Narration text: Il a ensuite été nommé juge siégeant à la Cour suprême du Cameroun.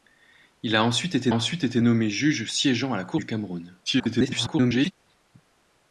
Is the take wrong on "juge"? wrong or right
right